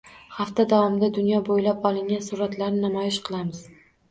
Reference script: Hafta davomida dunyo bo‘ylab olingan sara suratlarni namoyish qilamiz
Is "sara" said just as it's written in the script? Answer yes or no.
no